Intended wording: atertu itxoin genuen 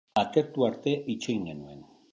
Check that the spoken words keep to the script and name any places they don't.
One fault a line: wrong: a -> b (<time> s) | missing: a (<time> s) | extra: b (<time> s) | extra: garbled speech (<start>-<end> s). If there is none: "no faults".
extra: arte (0.7 s)